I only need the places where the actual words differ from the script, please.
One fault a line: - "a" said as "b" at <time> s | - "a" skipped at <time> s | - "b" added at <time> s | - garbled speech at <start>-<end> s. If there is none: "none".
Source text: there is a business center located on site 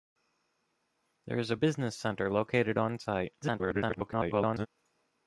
- garbled speech at 3.4-4.7 s